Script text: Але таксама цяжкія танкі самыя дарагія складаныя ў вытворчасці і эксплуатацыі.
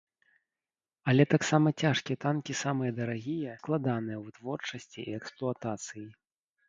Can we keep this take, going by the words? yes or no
yes